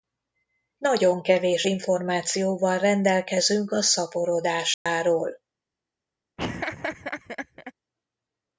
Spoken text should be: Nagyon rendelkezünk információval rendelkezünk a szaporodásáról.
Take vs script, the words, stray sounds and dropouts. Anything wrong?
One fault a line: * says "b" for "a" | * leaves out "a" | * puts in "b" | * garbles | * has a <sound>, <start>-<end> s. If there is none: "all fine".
* says "kevés" for "rendelkezünk"
* has a dropout, 4.7-4.9 s
* has a laugh, 6.4-7.7 s